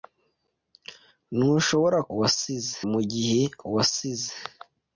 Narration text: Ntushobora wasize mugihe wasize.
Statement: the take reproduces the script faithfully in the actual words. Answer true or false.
true